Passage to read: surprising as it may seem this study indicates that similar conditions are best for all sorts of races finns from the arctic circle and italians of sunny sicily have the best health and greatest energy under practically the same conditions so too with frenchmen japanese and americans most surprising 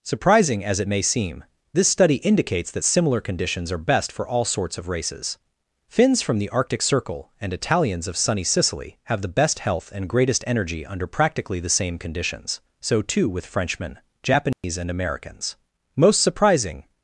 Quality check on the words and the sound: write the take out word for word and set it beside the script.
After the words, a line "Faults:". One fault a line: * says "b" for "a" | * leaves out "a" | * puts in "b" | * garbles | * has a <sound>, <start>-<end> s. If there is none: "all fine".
surprising as it may seem this study indicates that similar conditions are best for all sorts of races finns from the arctic circle and italians of sunny sicily have the best health and greatest energy under practically the same conditions so too with frenchmen japanese and americans most surprising
Faults:
* has a dropout, 14.5-14.6 s